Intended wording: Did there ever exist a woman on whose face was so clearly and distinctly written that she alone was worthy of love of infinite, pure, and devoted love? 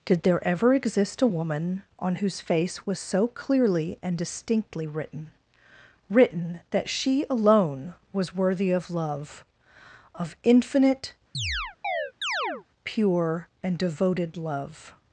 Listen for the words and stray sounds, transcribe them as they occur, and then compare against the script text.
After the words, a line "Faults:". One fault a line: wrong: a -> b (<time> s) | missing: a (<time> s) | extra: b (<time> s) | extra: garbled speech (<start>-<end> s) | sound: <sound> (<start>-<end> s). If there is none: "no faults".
Did there ever exist a woman on whose face was so clearly and distinctly written written that she alone was worthy of love of infinite, pure, and devoted love?
Faults:
extra: written (6.1 s)
sound: chirp (11.3-12.6 s)